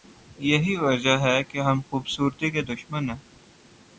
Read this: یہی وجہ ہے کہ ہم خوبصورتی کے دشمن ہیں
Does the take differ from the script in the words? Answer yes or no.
no